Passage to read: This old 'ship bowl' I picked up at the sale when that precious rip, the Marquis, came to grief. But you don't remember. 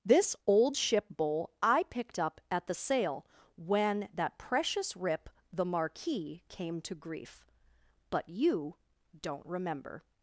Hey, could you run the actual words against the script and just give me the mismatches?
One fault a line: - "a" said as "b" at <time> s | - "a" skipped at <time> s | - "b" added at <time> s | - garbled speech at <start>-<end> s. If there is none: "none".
none